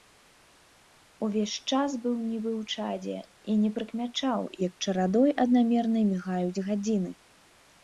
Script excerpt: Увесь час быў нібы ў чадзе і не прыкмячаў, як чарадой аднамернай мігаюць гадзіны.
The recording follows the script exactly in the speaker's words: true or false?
true